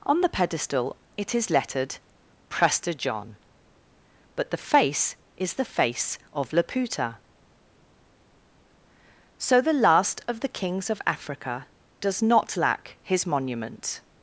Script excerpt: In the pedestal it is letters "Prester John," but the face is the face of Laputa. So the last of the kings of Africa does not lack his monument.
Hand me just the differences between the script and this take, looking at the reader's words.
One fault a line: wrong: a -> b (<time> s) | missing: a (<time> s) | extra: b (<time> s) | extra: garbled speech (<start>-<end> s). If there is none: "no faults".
wrong: In -> On (0.0 s)
wrong: letters -> lettered (1.5 s)